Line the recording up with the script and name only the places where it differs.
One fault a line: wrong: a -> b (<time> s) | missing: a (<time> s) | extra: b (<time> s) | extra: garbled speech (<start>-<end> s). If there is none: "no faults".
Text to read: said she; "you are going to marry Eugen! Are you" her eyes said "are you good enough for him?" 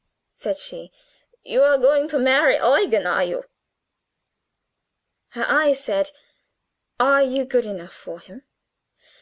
no faults